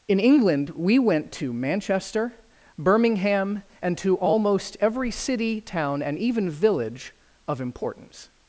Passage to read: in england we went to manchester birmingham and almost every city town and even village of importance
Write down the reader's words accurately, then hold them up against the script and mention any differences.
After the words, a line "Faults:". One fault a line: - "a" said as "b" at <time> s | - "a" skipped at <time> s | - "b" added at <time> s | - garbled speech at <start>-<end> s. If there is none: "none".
in england we went to manchester birmingham and to almost every city town and even village of importance
Faults:
- "to" added at 4.0 s